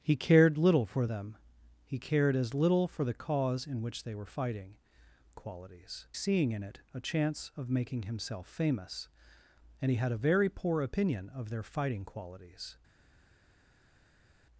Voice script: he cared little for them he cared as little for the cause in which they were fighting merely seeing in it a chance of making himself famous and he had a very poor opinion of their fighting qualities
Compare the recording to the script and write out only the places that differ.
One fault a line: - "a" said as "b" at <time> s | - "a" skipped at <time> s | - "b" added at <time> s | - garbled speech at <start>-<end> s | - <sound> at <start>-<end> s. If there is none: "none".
- "merely" said as "qualities" at 5.3 s